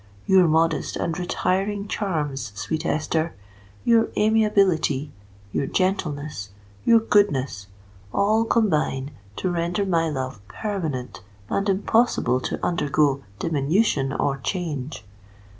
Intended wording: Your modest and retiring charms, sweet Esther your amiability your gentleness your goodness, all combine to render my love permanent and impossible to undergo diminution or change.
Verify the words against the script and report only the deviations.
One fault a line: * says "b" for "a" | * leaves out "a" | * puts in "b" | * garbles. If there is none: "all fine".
all fine